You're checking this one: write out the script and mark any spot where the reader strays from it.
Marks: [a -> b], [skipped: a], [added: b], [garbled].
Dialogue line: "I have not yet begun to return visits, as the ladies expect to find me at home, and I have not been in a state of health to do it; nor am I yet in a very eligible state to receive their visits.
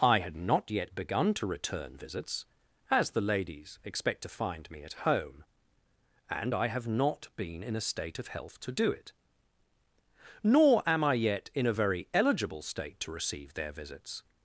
"I [have -> had] not yet begun to return visits, as the ladies expect to find me at home, and I have not been in a state of health to do it; nor am I yet in a very eligible state to receive their visits.